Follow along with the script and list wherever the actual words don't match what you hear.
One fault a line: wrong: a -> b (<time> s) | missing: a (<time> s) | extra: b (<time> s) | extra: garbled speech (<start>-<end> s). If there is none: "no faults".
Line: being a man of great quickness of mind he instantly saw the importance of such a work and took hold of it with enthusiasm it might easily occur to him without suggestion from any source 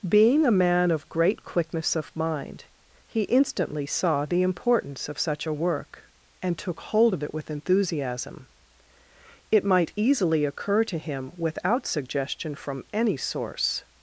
no faults